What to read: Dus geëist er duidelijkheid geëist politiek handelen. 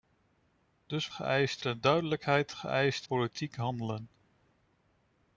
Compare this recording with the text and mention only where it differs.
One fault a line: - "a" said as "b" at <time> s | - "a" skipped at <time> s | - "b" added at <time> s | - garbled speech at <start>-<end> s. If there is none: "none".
none